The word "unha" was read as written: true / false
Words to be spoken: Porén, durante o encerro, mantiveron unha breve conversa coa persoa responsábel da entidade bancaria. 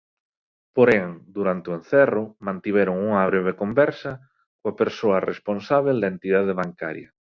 true